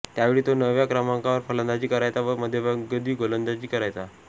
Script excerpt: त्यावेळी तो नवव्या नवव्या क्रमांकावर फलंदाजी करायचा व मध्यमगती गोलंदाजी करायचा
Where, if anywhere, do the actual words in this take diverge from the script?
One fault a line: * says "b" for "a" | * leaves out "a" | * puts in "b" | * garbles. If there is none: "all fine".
* leaves out "नवव्या"